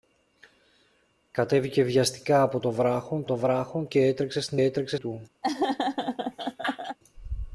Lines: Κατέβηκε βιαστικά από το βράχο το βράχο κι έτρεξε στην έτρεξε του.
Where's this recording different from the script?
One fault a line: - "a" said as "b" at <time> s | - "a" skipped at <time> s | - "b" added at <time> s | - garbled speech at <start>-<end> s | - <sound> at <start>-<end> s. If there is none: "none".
- laugh at 5.4-7.0 s